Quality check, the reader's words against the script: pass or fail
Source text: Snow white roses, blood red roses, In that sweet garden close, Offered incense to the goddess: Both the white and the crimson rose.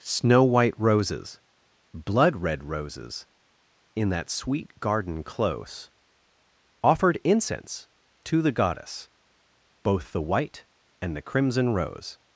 pass